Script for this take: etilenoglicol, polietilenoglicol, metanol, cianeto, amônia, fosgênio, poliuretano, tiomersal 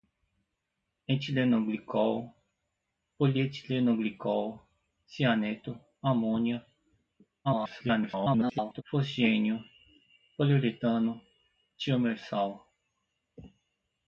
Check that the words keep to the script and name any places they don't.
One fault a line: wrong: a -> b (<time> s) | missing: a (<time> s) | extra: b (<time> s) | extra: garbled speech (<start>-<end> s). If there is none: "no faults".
missing: metanol (4.6 s)
extra: garbled speech (7.4-8.8 s)